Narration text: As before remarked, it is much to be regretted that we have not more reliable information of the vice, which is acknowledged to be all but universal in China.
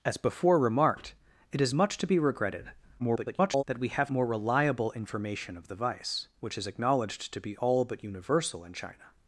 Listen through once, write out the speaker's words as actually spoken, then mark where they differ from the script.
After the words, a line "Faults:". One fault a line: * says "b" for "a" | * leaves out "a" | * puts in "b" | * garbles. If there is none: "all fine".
As before remarked, it is much to be regretted [garbled] that we have more reliable information of the vice, which is acknowledged to be all but universal in China.
Faults:
* garbles
* leaves out "not"